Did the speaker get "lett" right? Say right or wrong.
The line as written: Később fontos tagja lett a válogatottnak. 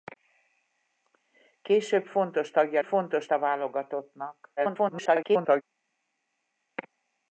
wrong